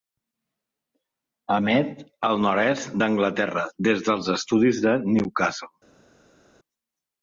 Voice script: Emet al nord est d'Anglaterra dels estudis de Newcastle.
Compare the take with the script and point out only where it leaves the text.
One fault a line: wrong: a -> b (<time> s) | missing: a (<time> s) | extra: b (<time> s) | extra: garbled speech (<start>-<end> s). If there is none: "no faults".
extra: des (3.9 s)